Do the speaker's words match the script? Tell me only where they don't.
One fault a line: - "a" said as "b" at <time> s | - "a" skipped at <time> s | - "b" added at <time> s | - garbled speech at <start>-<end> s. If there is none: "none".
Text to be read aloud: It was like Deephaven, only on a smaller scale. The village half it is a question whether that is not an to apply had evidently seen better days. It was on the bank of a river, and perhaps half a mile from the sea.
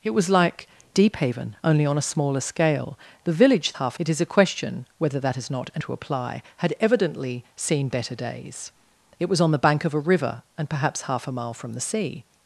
none